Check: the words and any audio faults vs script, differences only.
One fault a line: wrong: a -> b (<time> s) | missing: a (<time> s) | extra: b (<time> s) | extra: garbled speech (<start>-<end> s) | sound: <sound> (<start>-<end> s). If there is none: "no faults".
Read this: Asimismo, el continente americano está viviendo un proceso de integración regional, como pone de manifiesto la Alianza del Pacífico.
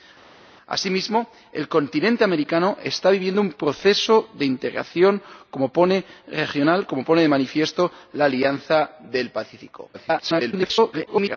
extra: garbled speech (9.9-11.4 s)